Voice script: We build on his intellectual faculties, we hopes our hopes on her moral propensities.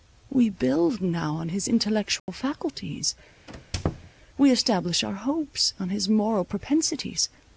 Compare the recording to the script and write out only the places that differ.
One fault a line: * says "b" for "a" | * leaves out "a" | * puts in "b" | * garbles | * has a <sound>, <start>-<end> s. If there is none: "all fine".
* puts in "now"
* has a dropout, 2.2-2.3 s
* has a squeak, 3.5-4.1 s
* says "establish" for "hopes"
* says "his" for "her"